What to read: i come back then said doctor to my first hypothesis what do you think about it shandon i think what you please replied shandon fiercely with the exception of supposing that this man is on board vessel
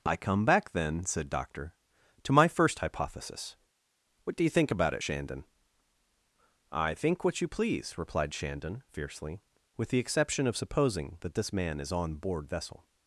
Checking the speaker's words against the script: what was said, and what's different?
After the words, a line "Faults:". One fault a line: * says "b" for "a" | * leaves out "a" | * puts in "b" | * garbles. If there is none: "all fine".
i come back then said doctor to my first hypothesis what do you think about it shandon i think what you please replied shandon fiercely with the exception of supposing that this man is on board vessel
Faults:
all fine